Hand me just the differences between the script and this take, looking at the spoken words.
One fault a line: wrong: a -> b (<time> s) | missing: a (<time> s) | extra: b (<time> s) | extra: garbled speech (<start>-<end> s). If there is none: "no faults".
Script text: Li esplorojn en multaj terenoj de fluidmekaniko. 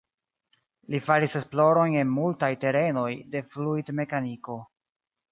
extra: faris (1.1 s)